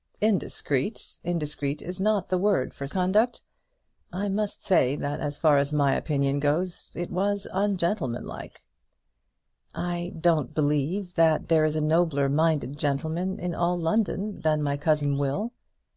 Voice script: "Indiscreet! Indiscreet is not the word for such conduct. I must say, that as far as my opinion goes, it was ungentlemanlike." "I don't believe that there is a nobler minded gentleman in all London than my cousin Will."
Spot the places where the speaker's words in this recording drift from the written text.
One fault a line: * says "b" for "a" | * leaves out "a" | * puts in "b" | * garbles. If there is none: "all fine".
* leaves out "such"